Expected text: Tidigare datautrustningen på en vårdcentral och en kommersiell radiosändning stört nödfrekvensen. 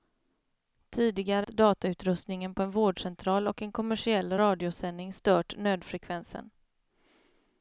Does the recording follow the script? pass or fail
pass